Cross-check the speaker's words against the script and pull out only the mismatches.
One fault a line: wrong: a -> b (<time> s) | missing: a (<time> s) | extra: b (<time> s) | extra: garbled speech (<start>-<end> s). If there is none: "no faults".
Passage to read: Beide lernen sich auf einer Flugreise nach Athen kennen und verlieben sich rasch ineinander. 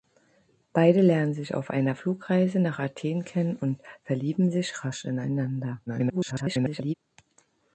extra: garbled speech (5.9-6.9 s)